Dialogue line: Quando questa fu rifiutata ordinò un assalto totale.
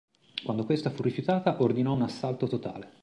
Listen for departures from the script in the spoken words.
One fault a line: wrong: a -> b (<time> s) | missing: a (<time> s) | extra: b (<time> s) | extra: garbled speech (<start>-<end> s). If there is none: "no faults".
no faults